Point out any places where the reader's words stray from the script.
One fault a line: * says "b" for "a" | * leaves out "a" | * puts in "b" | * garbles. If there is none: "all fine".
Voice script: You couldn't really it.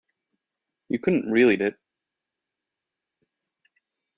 all fine